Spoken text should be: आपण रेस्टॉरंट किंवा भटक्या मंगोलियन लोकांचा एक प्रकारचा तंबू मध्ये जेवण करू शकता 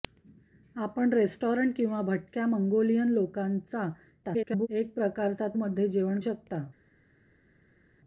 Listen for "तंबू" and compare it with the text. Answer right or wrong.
wrong